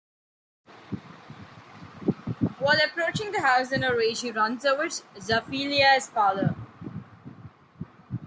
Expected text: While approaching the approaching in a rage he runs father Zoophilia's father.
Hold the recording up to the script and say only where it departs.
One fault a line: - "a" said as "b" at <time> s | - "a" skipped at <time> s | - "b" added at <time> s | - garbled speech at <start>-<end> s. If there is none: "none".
- "approaching" said as "house" at 3.4 s
- "father" said as "over" at 4.6 s